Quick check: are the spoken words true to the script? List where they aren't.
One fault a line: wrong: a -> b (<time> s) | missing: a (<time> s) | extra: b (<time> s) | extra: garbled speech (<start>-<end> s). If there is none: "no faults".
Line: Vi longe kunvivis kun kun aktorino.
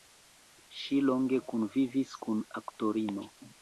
wrong: Vi -> Ŝi (0.8 s)
missing: kun (2.4 s)